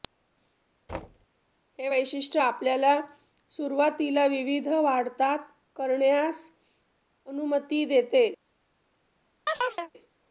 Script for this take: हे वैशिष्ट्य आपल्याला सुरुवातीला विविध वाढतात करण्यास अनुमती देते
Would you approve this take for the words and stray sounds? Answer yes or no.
no